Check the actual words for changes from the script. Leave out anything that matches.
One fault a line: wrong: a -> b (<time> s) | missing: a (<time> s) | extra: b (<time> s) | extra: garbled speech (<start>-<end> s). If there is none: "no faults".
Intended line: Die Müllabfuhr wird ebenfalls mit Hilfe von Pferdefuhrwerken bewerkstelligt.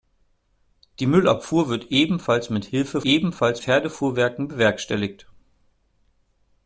wrong: von -> ebenfalls (3.0 s)